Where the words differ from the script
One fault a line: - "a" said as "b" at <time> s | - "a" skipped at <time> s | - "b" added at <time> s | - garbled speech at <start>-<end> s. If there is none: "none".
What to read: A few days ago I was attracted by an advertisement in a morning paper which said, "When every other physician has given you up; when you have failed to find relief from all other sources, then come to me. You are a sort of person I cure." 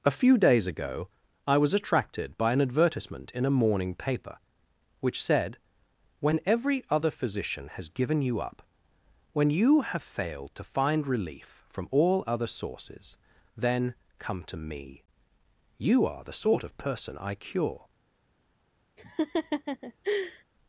- "a" said as "the" at 16.2 s